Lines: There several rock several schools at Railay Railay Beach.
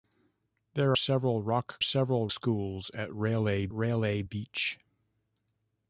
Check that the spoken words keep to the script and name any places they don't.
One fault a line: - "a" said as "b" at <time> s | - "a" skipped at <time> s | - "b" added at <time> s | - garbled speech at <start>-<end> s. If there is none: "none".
none